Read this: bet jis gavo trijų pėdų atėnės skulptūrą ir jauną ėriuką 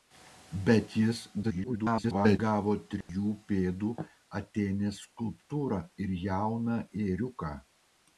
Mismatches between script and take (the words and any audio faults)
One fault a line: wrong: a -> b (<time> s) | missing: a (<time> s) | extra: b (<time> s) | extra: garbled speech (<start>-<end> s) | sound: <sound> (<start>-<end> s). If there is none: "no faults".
extra: garbled speech (1.4-2.4 s)
sound: dropout (3.0-3.1 s)